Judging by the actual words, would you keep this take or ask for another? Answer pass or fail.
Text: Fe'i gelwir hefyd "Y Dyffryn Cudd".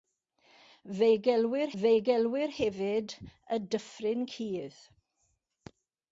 fail